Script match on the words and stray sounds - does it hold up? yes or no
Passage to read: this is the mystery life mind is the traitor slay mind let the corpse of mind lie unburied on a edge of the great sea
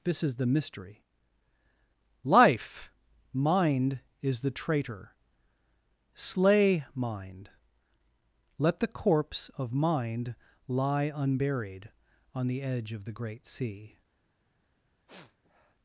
no